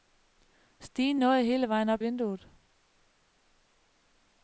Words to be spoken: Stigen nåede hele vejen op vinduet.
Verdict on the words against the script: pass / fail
pass